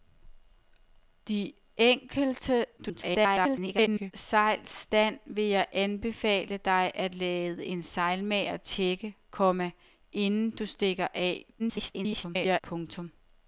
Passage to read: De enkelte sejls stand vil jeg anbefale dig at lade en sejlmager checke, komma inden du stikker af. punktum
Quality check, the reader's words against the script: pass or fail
fail